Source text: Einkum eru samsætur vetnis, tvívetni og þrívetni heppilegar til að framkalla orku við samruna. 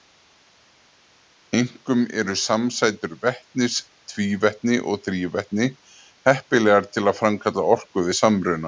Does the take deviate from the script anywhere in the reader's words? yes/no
no